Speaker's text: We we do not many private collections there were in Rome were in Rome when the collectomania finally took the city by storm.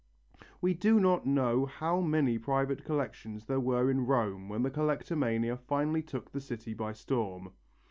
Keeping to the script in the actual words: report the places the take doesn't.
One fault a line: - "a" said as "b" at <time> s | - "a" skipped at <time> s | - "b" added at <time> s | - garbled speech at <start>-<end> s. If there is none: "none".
- "we" skipped at 0.7 s
- "know how" added at 1.3 s
- "were in Rome" skipped at 4.5 s